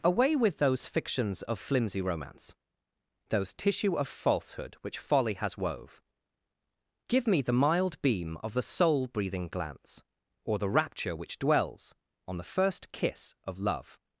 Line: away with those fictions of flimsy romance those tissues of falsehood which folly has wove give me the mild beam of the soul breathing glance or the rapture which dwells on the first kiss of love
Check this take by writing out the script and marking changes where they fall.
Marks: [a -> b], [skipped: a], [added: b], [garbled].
away with those fictions of flimsy romance those [tissues -> tissue] of falsehood which folly has wove give me the mild beam of the soul breathing glance or the rapture which dwells on the first kiss of love